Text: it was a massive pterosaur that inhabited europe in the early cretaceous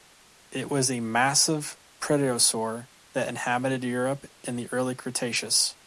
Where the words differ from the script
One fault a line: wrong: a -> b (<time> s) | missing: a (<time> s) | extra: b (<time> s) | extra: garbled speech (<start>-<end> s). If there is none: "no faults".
no faults